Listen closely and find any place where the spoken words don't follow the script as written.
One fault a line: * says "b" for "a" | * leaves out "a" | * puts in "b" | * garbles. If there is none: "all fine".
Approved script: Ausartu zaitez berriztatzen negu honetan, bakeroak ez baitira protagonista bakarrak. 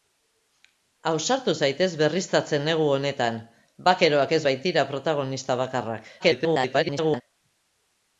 * garbles